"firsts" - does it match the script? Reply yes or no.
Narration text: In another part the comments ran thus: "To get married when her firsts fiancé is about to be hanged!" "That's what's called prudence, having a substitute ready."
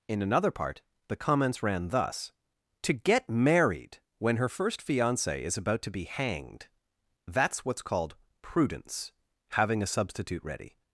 no